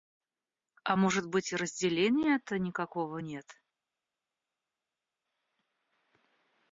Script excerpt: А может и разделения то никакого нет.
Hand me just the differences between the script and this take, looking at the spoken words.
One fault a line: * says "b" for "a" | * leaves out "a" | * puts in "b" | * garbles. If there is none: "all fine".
* puts in "быть"